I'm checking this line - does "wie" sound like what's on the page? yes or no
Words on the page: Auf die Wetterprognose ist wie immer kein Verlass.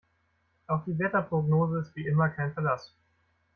yes